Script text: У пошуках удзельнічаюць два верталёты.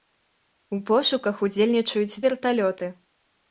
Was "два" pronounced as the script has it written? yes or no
no